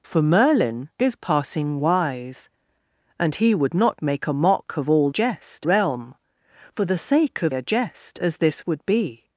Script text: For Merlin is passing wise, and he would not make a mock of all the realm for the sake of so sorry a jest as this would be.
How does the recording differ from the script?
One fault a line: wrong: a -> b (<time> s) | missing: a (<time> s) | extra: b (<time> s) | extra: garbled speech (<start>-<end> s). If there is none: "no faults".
wrong: the -> jest (5.1 s)
missing: so sorry (7.5 s)